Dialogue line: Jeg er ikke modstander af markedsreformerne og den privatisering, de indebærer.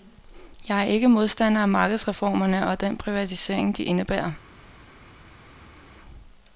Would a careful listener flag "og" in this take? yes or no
no